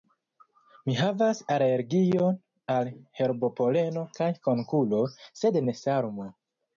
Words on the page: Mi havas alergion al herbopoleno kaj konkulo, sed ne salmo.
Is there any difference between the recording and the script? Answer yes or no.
no